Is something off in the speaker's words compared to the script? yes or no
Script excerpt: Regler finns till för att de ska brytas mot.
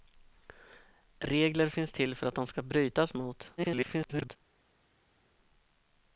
yes